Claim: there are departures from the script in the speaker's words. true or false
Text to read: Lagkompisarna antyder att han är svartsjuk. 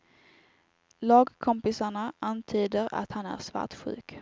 false